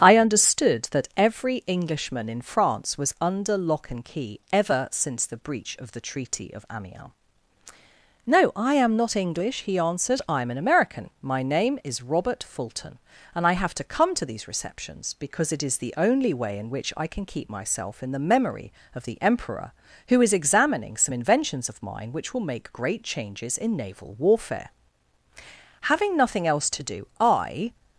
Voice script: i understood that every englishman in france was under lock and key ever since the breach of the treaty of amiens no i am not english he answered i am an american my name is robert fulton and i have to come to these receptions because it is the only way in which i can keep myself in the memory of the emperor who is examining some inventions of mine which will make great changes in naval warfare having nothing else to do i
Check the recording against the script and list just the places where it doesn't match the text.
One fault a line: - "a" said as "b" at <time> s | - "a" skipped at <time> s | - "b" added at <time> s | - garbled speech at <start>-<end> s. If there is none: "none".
none